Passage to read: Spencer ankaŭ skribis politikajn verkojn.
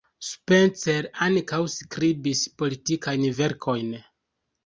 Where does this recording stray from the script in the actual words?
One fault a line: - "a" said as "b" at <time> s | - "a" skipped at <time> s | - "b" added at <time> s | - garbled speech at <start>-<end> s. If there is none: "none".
none